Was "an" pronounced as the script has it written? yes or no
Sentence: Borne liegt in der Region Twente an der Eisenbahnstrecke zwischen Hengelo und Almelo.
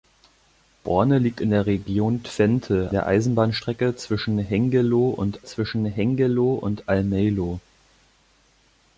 no